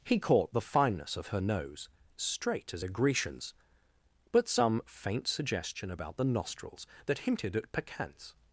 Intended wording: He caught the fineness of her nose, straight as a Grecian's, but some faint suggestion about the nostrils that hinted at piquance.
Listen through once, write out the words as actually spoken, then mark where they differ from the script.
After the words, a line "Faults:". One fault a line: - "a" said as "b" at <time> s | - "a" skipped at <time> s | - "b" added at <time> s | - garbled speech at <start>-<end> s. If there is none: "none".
He caught the fineness of her nose, straight as a Grecian's, but some faint suggestion about the nostrils that hinted at piquance.
Faults:
none